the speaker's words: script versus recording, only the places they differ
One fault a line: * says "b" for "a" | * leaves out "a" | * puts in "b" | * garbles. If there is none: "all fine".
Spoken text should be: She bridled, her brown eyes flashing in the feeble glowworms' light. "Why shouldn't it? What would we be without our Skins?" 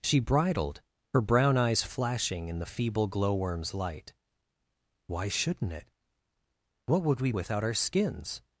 * leaves out "be"